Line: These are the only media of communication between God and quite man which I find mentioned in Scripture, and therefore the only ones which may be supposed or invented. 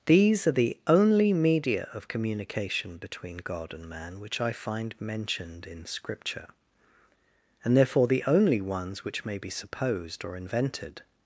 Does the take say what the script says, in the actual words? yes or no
no